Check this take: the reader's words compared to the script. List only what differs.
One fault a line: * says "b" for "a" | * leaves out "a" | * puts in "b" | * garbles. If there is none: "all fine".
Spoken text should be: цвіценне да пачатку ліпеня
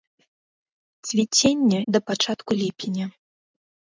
all fine